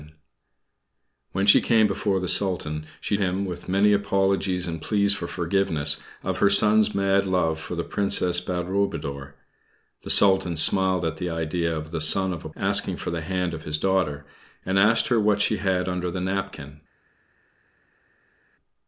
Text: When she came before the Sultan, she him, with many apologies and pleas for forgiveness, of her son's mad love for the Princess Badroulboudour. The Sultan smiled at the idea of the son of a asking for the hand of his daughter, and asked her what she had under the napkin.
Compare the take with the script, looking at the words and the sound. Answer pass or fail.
pass